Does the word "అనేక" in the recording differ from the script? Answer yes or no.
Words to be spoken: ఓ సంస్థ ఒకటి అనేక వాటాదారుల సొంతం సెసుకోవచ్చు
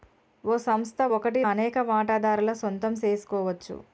no